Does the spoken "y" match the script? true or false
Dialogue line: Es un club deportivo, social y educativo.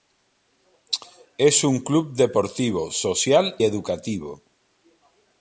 false